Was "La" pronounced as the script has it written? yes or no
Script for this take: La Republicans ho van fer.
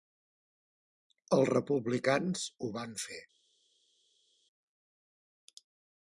no